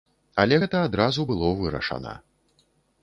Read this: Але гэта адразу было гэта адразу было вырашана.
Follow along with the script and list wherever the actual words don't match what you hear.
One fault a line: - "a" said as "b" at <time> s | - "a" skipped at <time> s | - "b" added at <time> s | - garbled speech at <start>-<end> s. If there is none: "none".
- "гэта адразу было" skipped at 1.5 s